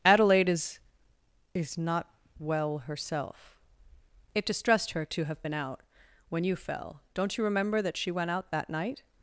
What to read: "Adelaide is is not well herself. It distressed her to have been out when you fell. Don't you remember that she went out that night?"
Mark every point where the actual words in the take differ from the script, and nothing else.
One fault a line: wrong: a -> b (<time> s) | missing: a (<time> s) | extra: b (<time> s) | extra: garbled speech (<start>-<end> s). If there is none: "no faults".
no faults